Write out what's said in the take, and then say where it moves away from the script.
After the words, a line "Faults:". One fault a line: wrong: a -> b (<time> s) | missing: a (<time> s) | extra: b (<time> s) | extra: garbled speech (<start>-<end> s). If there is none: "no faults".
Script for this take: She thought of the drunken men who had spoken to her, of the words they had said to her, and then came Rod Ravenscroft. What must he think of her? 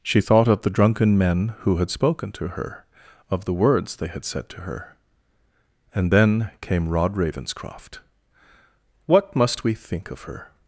She thought of the drunken men who had spoken to her, of the words they had said to her, and then came Rod Ravenscroft. What must we think of her?
Faults:
wrong: he -> we (9.6 s)